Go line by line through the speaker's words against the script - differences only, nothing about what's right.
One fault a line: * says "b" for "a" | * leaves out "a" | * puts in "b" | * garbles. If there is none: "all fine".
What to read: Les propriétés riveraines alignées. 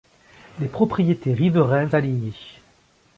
all fine